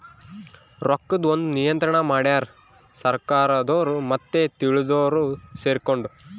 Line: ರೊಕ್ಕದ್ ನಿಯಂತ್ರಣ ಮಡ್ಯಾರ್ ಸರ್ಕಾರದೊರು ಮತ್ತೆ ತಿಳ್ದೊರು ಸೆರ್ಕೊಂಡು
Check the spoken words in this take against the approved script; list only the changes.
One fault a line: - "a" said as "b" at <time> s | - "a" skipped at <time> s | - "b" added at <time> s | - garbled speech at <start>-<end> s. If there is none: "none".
- "ಒಂದ್" added at 1.3 s